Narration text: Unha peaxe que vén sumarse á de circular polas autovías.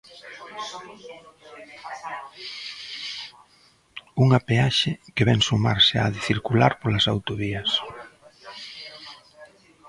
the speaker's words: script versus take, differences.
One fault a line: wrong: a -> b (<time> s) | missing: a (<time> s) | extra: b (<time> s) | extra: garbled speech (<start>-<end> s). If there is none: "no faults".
no faults